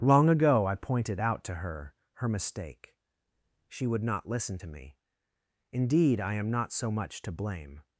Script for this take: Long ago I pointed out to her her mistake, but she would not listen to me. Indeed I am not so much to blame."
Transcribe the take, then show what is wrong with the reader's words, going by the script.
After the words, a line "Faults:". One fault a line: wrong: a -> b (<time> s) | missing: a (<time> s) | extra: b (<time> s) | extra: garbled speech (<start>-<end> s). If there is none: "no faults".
Long ago I pointed out to her her mistake, she would not listen to me. Indeed I am not so much to blame."
Faults:
missing: but (3.0 s)